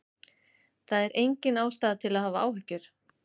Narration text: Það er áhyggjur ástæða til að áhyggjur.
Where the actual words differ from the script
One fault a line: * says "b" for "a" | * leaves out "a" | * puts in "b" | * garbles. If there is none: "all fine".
* says "engin" for "áhyggjur"
* puts in "hafa"